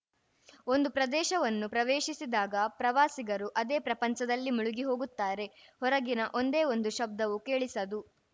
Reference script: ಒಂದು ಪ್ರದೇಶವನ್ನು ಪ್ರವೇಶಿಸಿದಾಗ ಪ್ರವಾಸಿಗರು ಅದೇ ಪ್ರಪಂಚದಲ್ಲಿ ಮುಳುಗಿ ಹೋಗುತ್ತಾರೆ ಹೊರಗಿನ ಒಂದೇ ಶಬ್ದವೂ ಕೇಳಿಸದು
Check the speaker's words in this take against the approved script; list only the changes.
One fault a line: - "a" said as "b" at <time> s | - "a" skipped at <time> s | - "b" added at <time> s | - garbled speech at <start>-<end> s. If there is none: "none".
- "ಒಂದು" added at 6.7 s